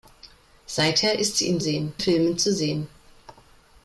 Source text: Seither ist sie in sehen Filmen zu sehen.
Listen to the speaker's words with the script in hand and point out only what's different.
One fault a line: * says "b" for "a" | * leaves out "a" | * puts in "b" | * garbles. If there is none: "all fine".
all fine